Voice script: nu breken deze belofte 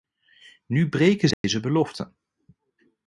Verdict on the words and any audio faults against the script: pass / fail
fail